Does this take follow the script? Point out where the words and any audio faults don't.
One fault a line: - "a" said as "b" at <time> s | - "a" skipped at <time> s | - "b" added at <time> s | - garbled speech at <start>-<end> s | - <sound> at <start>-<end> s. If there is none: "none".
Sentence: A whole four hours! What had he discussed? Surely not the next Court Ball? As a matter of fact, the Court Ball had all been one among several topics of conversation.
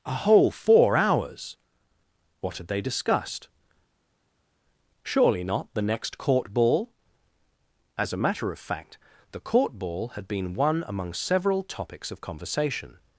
- "he" said as "they" at 2.7 s
- "all" skipped at 10.3 s